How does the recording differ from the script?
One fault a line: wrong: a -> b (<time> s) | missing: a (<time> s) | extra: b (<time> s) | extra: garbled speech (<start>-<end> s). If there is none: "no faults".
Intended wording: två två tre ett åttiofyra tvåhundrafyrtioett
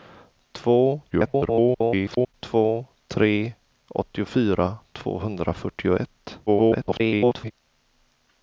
extra: garbled speech (1.1-2.3 s)
missing: ett (3.5 s)
extra: garbled speech (6.5-7.5 s)